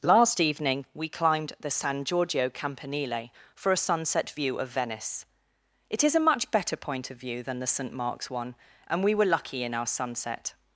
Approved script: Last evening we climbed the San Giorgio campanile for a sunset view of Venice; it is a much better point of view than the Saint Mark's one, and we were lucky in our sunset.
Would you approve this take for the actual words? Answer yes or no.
yes